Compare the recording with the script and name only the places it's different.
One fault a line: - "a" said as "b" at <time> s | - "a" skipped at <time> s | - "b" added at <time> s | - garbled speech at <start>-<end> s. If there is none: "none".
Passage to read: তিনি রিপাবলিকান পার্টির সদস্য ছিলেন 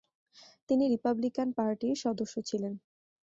none